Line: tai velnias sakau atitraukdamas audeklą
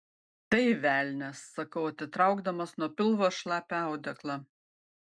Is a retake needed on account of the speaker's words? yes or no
yes